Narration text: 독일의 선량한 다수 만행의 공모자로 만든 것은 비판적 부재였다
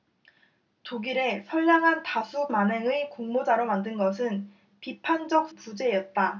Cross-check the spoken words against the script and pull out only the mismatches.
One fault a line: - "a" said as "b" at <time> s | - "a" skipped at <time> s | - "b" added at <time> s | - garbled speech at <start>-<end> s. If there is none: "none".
none